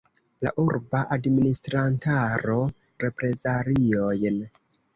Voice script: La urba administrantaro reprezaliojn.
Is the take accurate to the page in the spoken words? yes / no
yes